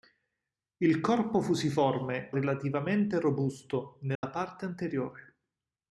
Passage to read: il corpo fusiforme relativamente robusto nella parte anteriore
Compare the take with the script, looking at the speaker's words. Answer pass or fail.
pass